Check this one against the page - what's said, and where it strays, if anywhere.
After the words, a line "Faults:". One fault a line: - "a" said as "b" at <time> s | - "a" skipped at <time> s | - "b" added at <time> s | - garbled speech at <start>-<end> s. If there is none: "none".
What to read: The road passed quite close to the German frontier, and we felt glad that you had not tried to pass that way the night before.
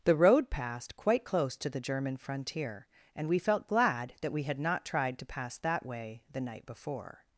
The road passed quite close to the German frontier, and we felt glad that we had not tried to pass that way the night before.
Faults:
- "you" said as "we" at 4.3 s